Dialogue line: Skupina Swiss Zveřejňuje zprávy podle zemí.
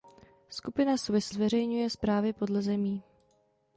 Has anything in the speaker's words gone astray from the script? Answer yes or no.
no